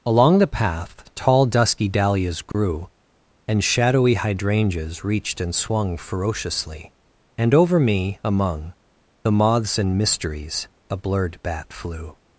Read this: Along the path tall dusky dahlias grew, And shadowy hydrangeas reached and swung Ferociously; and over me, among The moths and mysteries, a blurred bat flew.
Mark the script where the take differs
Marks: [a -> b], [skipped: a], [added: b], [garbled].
Along the path tall dusky dahlias grew, And shadowy hydrangeas reached and swung Ferociously; and over me, among The moths and mysteries, a blurred bat flew.